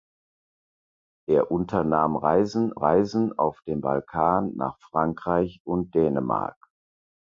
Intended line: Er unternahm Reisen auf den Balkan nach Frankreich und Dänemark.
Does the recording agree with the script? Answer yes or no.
no